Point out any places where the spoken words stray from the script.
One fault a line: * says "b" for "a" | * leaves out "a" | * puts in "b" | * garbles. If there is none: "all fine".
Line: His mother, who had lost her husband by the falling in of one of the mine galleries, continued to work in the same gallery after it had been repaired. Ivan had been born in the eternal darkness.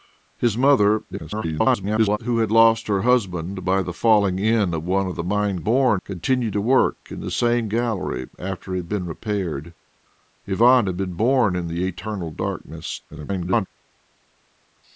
* garbles
* says "born" for "galleries"
* garbles